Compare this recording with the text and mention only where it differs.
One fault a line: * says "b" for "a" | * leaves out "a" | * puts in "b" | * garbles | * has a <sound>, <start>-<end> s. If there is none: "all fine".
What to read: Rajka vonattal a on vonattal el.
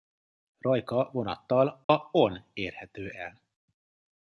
* has a dropout, 1.8-1.9 s
* says "érhető" for "vonattal"